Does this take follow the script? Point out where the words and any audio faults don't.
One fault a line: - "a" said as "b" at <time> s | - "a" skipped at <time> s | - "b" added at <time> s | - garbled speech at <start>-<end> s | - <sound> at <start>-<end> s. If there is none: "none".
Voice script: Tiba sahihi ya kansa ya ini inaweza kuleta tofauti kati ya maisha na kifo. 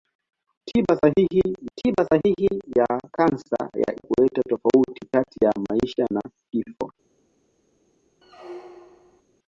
- "tiba sahihi" added at 1.8 s
- "ini inaweza" skipped at 3.9 s
- squeak at 8.2-9.2 s